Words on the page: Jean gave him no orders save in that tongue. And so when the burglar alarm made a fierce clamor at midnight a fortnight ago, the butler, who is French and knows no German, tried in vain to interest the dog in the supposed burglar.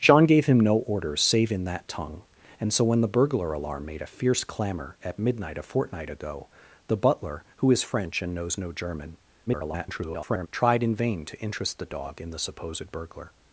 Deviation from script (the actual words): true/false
true